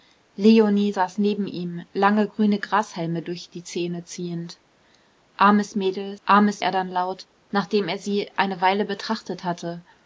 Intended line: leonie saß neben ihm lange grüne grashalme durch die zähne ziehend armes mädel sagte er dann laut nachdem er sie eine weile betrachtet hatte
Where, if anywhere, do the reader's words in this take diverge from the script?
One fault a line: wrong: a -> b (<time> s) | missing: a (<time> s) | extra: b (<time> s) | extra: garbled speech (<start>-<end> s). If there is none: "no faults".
wrong: sagte -> armes (6.2 s)